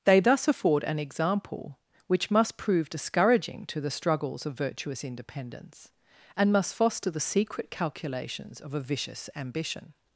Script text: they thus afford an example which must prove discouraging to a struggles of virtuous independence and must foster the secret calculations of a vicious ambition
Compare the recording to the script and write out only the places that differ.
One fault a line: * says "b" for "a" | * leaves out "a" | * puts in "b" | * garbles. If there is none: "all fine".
* says "the" for "a"